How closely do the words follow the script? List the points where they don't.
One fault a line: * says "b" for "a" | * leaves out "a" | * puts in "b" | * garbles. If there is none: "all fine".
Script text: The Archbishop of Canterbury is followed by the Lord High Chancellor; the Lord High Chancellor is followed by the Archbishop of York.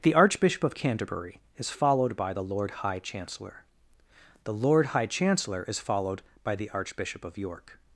all fine